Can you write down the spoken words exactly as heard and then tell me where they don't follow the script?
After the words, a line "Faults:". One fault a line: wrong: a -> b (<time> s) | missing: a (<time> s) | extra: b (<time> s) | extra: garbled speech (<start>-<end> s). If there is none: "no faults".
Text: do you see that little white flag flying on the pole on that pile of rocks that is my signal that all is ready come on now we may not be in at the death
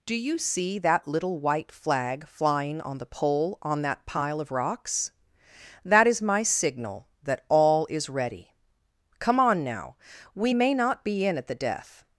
do you see that little white flag flying on the pole on that pile of rocks that is my signal that all is ready come on now we may not be in at the death
Faults:
no faults